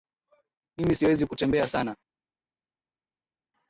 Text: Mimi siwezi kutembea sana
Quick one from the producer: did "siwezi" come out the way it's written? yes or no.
yes